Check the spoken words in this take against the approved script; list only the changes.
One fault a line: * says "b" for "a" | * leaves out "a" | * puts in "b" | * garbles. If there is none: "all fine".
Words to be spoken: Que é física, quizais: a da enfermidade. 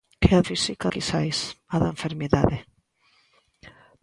all fine